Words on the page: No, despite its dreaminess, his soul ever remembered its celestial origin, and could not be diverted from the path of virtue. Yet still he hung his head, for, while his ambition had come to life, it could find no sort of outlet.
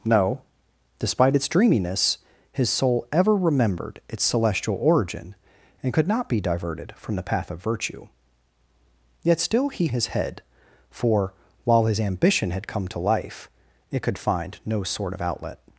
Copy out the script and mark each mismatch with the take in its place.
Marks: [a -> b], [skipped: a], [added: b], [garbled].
No, despite its dreaminess, his soul ever remembered its celestial origin, and could not be diverted from the path of virtue. Yet still he [skipped: hung] his head, for, while his ambition had come to life, it could find no sort of outlet.